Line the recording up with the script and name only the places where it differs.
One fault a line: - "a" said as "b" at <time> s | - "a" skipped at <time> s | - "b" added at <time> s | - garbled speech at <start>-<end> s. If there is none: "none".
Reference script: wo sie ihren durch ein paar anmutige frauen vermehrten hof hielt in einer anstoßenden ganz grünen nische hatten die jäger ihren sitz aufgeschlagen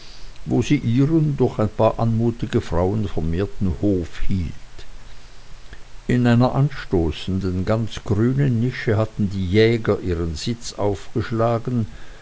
none